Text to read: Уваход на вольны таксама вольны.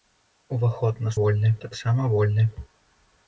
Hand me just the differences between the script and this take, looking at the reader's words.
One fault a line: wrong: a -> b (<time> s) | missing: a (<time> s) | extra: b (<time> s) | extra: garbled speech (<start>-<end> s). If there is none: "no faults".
no faults